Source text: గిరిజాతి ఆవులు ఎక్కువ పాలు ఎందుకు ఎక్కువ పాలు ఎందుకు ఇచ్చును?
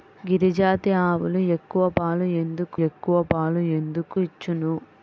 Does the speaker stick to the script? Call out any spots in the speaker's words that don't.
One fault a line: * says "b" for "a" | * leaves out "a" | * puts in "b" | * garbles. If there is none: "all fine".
all fine